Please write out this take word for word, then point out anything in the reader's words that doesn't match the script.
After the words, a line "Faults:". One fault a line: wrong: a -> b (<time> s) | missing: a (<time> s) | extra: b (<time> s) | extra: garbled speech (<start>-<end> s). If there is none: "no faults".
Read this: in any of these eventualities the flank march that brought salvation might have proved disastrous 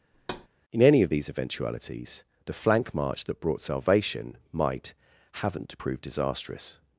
in any of these eventualities the flank march that brought salvation might haven't proved disastrous
Faults:
wrong: have -> haven't (5.4 s)